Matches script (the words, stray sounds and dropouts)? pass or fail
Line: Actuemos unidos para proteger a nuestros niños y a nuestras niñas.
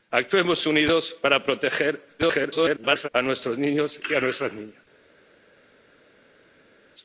fail